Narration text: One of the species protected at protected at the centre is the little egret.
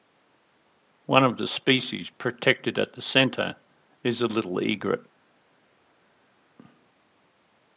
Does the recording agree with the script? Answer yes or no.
no